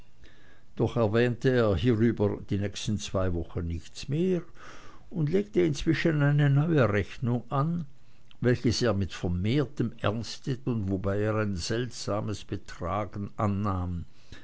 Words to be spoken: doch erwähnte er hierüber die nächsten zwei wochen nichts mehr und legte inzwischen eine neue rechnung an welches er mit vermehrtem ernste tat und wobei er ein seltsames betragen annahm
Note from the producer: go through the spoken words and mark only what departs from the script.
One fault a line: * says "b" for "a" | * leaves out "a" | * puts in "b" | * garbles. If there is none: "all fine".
* leaves out "tat"